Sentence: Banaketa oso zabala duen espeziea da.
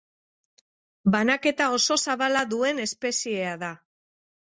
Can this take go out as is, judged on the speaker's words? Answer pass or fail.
pass